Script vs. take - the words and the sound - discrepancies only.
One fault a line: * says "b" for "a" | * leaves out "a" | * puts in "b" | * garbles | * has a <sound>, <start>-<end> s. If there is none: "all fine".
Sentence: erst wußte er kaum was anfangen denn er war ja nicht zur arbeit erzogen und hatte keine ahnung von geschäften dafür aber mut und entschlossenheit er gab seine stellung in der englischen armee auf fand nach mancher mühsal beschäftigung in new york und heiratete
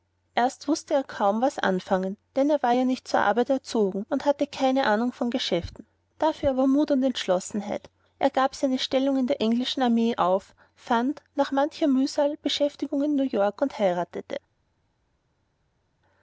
all fine